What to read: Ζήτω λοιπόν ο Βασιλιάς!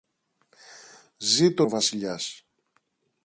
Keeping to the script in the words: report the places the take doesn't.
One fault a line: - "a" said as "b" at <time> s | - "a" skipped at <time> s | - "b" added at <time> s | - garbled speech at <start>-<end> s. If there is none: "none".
- "λοιπόν" skipped at 1.6 s